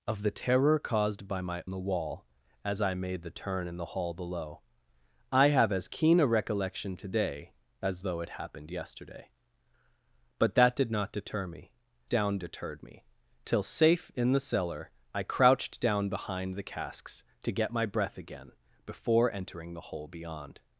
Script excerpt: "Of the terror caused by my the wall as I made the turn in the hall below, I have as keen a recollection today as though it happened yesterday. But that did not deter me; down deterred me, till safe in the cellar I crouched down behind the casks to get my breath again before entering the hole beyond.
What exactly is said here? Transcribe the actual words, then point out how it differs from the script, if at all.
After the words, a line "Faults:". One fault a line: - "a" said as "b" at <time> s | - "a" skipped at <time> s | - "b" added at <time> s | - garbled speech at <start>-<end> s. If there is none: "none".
"Of the terror caused by my the wall as I made the turn in the hall below, I have as keen a recollection today as though it happened yesterday. But that did not deter me; down deterred me, till safe in the cellar I crouched down behind the casks to get my breath again before entering the hole beyond.
Faults:
none